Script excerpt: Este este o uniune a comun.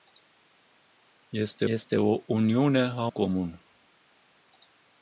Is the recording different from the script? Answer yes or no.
no